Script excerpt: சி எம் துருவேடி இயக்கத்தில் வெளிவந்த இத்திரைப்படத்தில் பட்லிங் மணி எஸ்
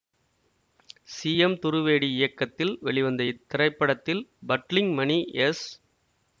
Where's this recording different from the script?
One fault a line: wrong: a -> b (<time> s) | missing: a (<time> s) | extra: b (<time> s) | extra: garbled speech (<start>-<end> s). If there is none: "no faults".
no faults